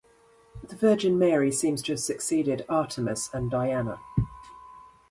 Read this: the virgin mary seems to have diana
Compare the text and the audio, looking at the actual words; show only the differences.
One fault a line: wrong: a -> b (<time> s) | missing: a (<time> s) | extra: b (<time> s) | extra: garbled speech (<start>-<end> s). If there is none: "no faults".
extra: succeeded artemis and (2.0 s)